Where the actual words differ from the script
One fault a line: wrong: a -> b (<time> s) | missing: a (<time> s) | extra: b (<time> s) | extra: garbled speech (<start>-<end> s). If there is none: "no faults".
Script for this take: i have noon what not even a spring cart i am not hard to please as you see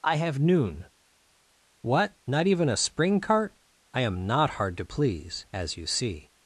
no faults